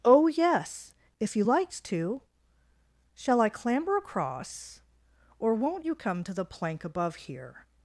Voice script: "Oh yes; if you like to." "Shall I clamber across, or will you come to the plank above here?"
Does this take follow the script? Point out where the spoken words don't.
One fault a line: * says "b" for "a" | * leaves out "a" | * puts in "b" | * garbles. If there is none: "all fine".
* says "likes" for "like"
* says "won't" for "will"